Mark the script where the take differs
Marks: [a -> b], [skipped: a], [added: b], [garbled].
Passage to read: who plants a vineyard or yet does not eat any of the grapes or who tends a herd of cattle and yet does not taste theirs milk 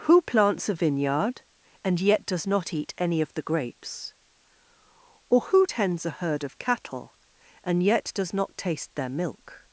who plants a vineyard [or -> and] yet does not eat any of the grapes or who tends a herd of cattle and yet does not taste [theirs -> their] milk